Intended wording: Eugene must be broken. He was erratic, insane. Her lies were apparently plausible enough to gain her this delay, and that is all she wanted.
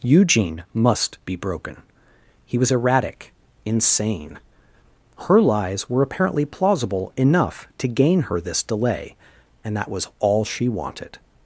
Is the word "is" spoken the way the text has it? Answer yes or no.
no